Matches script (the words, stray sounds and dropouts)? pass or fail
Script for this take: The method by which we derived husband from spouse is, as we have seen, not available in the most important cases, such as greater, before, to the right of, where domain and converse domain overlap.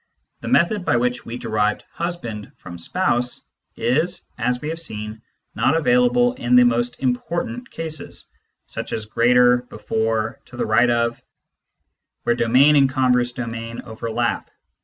pass